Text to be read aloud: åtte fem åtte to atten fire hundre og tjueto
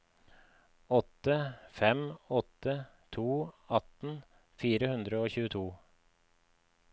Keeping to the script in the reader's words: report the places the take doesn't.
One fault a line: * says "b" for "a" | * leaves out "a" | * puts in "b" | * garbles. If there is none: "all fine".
all fine